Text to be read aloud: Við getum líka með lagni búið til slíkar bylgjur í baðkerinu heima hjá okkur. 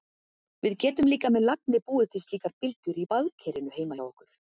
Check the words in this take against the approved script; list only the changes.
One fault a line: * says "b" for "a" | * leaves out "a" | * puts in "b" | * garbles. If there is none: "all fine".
all fine